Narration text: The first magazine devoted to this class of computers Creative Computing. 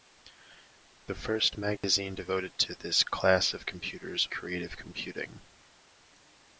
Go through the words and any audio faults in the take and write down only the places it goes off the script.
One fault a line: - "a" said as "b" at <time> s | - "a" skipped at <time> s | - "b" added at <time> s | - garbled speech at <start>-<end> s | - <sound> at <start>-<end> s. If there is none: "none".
- dropout at 1.8-1.8 s